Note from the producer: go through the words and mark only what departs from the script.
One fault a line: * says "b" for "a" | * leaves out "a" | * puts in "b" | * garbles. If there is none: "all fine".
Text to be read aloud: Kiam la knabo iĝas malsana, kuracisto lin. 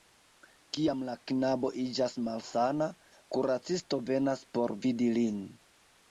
* puts in "venas por vidi"